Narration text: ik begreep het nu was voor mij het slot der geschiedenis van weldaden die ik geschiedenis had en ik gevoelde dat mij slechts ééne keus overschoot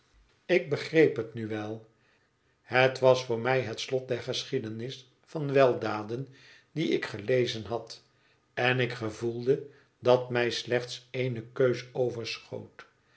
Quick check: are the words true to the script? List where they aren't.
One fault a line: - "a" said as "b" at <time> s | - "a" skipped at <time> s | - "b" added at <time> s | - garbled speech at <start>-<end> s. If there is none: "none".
- "wel het" added at 1.5 s
- "geschiedenis" said as "gelezen" at 7.0 s